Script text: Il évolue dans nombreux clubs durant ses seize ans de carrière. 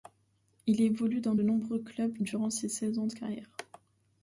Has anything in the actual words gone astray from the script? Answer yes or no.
no